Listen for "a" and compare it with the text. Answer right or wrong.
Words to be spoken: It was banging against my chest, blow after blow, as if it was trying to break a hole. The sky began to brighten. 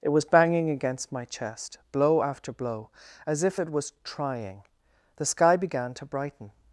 wrong